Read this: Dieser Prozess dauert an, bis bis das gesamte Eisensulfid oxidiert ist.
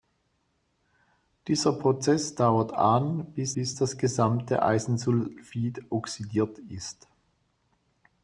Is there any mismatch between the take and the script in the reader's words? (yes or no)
no